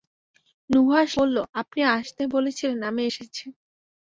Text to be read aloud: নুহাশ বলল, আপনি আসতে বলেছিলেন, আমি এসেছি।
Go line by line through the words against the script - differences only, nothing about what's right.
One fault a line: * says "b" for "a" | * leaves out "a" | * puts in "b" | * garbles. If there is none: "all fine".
all fine